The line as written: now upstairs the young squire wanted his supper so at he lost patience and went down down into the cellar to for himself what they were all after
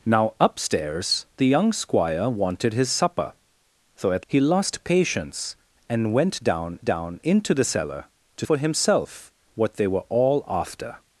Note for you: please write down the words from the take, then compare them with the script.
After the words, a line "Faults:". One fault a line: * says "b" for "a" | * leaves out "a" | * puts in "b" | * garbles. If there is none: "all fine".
now upstairs the young squire wanted his supper so at he lost patience and went down down into the cellar to for himself what they were all after
Faults:
all fine